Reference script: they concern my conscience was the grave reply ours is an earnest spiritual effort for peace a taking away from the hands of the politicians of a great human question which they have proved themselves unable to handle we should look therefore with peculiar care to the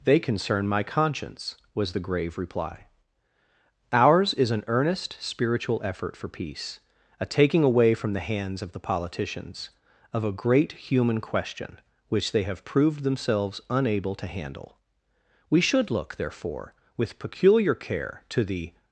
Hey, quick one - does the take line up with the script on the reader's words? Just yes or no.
yes